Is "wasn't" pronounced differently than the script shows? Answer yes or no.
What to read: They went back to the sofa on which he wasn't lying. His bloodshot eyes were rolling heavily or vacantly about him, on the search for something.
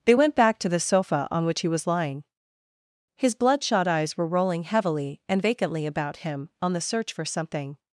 yes